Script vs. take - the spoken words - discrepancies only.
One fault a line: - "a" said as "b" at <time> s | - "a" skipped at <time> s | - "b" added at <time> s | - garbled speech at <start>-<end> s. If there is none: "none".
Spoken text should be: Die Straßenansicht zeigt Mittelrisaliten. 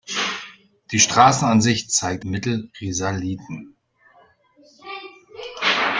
none